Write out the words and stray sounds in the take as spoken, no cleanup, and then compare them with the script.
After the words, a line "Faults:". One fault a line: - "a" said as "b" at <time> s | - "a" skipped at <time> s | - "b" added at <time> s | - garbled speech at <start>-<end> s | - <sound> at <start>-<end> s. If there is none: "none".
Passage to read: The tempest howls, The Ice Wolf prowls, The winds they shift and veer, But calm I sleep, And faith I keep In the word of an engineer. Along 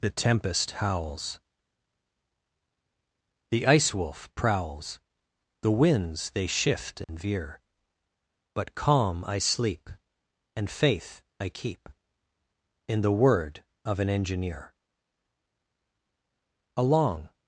The tempest howls, The Ice Wolf prowls, The winds they shift and veer, But calm I sleep, And faith I keep In the word of an engineer. Along
Faults:
- dropout at 7.0-7.1 s